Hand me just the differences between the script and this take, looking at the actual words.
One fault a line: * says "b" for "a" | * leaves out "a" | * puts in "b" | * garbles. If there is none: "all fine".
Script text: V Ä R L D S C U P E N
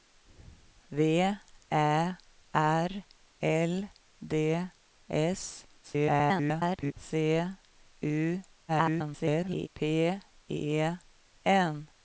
* garbles
* garbles